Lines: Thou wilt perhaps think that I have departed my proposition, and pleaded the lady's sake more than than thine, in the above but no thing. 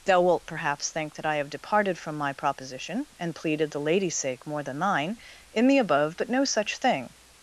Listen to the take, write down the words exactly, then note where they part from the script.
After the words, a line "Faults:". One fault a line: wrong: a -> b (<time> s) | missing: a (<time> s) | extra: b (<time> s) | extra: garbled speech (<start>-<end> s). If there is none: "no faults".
Thou wilt perhaps think that I have departed from my proposition, and pleaded the lady's sake more than thine, in the above but no such thing.
Faults:
extra: from (1.9 s)
missing: than (4.8 s)
extra: such (6.4 s)